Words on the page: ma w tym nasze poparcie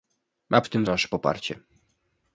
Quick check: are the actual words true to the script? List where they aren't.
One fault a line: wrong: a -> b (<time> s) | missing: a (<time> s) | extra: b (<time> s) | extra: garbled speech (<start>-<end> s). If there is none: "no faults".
no faults